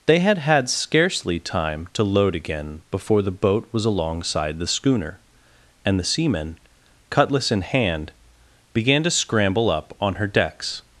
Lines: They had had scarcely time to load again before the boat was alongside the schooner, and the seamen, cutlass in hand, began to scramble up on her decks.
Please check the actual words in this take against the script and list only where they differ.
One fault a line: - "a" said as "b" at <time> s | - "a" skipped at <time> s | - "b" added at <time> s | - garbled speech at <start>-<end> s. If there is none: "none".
none